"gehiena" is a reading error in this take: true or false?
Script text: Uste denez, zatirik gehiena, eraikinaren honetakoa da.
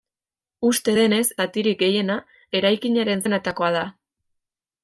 false